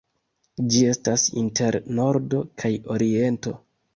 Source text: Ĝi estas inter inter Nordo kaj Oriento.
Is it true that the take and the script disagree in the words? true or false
true